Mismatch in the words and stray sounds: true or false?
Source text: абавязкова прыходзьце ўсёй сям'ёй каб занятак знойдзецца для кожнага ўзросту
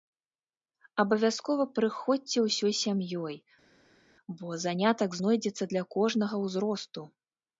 true